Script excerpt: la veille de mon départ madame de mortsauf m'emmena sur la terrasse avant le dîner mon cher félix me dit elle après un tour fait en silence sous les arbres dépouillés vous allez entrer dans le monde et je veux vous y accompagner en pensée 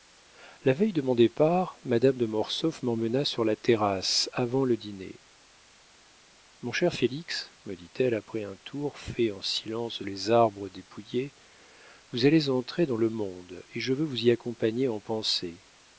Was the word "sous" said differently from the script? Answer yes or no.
yes